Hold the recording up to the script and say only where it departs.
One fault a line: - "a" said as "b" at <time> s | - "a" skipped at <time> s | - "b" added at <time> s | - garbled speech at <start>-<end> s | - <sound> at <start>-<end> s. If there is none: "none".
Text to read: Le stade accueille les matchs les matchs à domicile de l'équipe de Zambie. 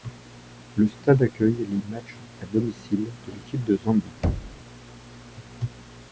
- "les matchs" skipped at 2.2 s
- thud at 4.2-4.6 s